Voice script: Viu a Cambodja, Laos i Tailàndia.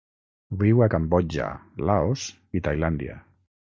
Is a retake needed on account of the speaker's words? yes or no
no